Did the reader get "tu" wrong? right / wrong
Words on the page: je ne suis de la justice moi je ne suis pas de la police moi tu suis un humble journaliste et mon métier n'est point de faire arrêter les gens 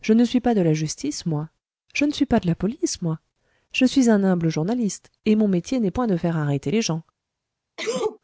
wrong